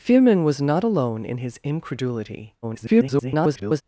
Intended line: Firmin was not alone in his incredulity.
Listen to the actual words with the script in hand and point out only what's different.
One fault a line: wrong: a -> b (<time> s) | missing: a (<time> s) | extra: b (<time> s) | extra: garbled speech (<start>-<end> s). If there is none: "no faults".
extra: garbled speech (2.6-3.8 s)